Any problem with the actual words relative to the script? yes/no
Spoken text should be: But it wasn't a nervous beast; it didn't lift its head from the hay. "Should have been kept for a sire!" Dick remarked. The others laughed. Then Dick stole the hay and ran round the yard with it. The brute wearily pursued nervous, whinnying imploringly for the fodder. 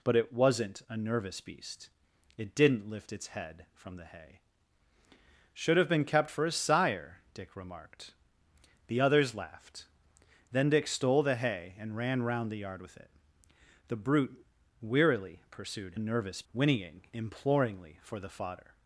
no